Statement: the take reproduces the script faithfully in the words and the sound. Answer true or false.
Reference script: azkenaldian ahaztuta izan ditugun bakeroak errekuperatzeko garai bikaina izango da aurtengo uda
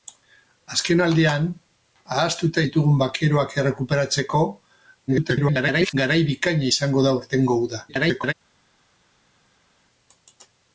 false